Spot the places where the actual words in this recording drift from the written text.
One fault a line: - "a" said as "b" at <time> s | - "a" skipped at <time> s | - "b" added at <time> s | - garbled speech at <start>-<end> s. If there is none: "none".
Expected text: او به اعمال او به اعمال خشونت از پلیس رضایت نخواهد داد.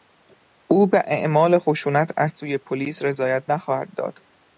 - "او به اعمال" skipped at 1.6 s
- "سوی" added at 2.3 s